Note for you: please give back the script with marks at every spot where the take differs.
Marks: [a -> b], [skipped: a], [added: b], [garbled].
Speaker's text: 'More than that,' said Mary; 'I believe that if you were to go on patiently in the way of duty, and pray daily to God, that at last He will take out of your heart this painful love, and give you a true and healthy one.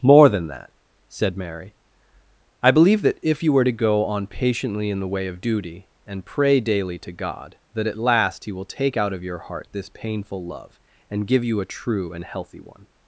'More than that,' said Mary; 'I believe that if you were to go on patiently in the way of duty, and pray daily to God, that at last He will take out of your heart this painful love, and give you a true and healthy one.